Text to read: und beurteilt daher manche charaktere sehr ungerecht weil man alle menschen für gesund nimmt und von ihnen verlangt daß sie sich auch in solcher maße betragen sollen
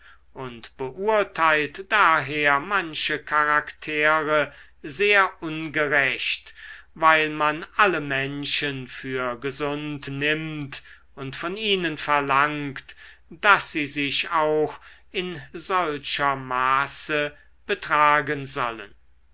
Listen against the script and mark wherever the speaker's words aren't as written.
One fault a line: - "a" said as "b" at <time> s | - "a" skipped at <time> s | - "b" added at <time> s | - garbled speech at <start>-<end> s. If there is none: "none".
none